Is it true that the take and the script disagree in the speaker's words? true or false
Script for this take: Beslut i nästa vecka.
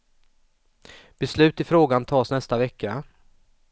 true